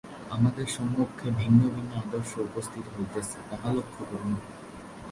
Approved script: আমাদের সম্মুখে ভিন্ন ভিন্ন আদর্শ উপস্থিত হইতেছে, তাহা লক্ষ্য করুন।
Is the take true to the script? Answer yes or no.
yes